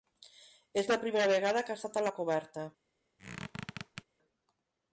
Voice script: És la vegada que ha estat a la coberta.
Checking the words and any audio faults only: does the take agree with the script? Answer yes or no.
no